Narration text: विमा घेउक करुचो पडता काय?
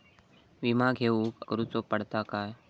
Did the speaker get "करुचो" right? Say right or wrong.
right